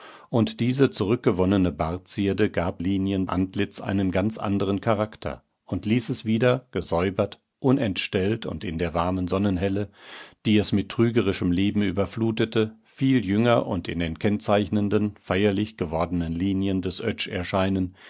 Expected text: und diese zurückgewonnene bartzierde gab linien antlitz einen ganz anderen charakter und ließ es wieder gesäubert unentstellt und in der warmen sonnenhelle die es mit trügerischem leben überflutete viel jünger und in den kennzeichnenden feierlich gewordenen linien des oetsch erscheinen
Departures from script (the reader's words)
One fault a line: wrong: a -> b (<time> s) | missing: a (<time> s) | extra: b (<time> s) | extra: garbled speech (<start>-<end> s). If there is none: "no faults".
no faults